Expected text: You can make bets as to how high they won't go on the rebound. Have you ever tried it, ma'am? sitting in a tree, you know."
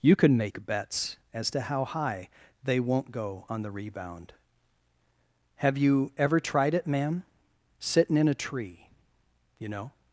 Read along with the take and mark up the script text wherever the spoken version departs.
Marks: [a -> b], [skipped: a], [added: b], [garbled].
You can make bets as to how high they won't go on the rebound. Have you ever tried it, ma'am? sitting in a tree, you know."